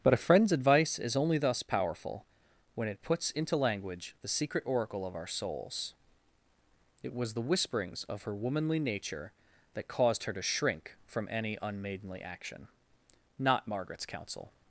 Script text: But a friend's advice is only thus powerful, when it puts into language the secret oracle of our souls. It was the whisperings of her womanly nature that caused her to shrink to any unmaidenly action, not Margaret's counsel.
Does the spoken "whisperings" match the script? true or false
true